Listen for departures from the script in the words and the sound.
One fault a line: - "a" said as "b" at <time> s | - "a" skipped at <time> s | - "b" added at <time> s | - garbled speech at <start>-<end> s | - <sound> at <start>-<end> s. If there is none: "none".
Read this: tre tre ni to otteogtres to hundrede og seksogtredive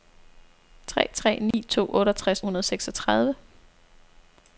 - dropout at 1.5-1.5 s
- "to" skipped at 2.4 s